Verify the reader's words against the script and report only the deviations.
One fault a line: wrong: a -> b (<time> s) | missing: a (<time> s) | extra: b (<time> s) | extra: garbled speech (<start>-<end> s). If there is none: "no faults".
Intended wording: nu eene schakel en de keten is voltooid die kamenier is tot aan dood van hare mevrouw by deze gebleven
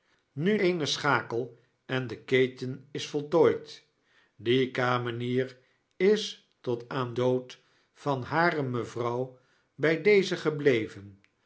no faults